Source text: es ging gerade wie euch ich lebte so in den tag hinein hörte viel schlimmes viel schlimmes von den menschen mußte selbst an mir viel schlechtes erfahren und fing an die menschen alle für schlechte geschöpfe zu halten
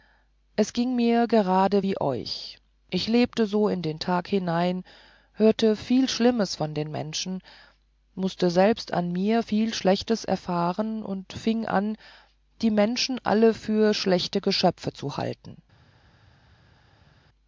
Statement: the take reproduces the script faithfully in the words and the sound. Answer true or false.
false